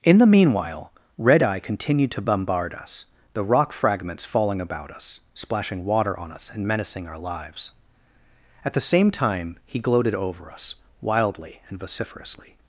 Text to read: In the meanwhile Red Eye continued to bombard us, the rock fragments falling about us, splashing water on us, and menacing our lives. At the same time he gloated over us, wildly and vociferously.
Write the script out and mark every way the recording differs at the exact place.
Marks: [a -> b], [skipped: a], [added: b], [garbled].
In the meanwhile Red Eye continued to bombard us, the rock fragments falling about us, splashing water on us, and menacing our lives. At the same time he gloated over us, wildly and vociferously.